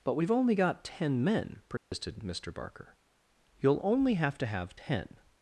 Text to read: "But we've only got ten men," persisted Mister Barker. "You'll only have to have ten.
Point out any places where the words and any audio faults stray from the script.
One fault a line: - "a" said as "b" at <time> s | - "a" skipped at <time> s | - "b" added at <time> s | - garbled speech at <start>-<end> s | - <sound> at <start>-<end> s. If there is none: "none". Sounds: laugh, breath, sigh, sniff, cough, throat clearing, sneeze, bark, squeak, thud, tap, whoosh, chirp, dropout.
- dropout at 1.8-1.9 s